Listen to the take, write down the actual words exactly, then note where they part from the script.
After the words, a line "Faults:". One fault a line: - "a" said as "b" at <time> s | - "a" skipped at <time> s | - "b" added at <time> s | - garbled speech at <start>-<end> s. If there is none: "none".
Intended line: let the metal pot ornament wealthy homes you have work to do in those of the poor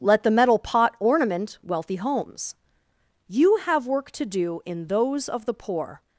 let the metal pot ornament wealthy homes you have work to do in those of the poor
Faults:
none